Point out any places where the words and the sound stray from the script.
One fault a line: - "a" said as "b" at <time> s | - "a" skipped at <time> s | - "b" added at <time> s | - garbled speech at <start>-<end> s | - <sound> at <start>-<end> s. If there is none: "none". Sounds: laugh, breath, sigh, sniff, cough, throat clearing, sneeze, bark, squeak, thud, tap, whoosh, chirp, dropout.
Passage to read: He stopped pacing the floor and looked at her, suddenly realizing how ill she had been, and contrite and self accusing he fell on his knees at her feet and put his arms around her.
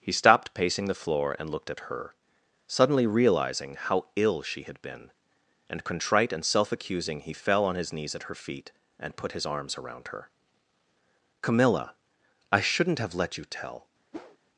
- "Camilla I shouldn't have let you tell" added at 11.4 s
- whoosh at 14.1-14.4 s